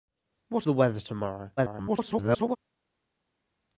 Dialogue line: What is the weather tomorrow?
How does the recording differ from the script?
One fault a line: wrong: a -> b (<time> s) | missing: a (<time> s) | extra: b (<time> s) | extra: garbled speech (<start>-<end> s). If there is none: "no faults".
missing: is (0.7 s)
extra: garbled speech (1.6-2.6 s)